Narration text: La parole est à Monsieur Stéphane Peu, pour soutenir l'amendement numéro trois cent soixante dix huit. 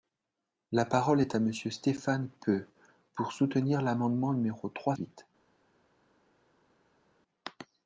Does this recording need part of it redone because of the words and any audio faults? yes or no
yes